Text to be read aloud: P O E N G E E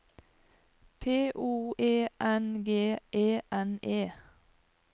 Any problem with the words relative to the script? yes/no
yes